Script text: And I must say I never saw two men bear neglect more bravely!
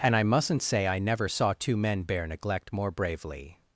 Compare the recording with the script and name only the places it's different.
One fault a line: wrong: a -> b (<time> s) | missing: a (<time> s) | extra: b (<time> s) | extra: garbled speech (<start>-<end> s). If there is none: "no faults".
wrong: must -> mustn't (0.2 s)